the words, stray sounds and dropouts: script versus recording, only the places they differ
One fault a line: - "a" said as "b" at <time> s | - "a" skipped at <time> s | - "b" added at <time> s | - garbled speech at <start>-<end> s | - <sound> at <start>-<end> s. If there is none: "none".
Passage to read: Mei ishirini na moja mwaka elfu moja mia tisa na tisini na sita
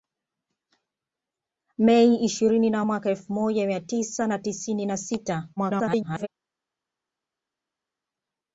- "moja" skipped at 2.9 s
- garbled speech at 5.6-6.3 s